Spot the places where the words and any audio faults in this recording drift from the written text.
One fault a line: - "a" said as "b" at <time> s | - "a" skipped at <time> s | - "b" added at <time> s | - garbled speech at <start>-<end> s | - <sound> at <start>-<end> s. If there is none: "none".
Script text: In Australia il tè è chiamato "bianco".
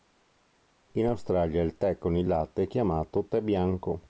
- "con il latte" added at 2.0 s
- "tè" added at 3.2 s